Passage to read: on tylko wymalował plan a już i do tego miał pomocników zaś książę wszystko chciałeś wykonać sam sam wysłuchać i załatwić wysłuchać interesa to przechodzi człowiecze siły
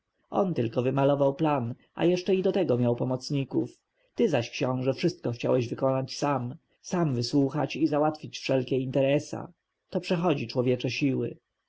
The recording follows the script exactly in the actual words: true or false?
false